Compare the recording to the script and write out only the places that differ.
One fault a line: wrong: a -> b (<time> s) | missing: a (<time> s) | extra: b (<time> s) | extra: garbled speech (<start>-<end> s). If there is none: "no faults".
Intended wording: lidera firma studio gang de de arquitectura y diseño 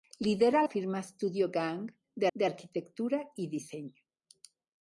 no faults